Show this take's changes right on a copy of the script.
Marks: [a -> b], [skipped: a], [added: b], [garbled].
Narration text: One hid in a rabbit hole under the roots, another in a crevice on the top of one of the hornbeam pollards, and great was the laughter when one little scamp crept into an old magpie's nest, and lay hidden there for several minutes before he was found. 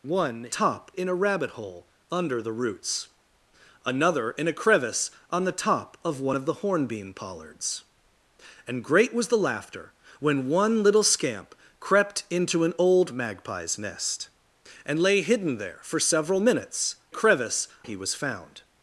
One [hid -> top] in a rabbit hole under the roots, another in a crevice on the top of one of the hornbeam pollards, and great was the laughter when one little scamp crept into an old magpie's nest, and lay hidden there for several minutes [before -> crevice] he was found.